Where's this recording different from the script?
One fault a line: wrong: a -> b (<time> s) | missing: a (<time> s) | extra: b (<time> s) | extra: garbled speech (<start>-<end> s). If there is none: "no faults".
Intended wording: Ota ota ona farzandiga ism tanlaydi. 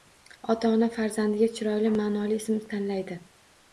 missing: ota (0.7 s)
extra: chiroyli ma'noli (1.6 s)